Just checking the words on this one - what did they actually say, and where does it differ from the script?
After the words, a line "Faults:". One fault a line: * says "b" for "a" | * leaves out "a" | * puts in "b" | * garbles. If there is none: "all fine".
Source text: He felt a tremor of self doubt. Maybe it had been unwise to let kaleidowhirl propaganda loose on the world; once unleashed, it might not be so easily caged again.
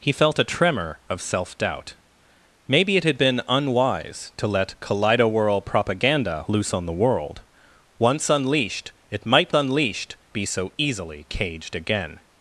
He felt a tremor of self doubt. Maybe it had been unwise to let kaleidowhirl propaganda loose on the world; once unleashed, it might unleashed be so easily caged again.
Faults:
* says "unleashed" for "not"